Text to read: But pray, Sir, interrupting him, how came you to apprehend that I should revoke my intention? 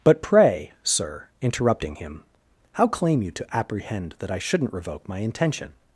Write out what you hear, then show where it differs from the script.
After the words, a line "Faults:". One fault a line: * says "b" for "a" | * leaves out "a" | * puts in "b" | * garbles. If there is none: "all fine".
But pray, Sir, interrupting him, how claim you to apprehend that I shouldn't revoke my intention?
Faults:
* says "claim" for "came"
* says "shouldn't" for "should"